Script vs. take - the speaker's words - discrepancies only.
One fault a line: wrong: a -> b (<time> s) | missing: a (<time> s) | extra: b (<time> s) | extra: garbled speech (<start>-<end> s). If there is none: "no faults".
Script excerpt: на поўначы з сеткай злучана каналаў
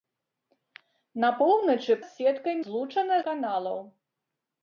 no faults